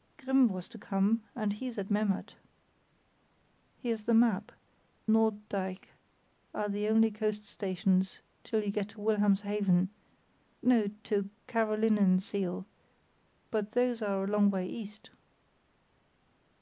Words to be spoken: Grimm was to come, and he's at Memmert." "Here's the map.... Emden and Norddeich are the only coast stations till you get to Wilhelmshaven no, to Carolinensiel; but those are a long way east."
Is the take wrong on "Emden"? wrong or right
wrong